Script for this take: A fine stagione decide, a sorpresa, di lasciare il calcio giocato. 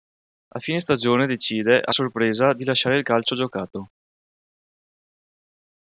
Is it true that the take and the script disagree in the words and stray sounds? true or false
false